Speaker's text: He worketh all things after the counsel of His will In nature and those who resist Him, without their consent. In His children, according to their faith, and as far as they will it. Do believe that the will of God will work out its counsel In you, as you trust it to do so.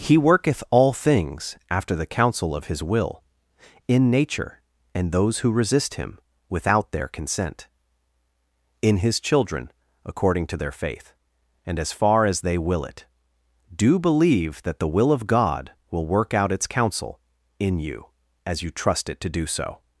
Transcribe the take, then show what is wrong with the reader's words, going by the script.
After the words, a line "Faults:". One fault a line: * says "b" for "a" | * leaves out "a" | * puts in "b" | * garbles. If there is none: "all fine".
He worketh all things after the counsel of His will In nature and those who resist Him, without their consent. In His children, according to their faith, and as far as they will it. Do believe that the will of God will work out its counsel In you, as you trust it to do so.
Faults:
all fine